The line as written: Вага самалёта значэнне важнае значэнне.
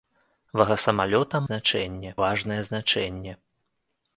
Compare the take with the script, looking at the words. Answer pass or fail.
pass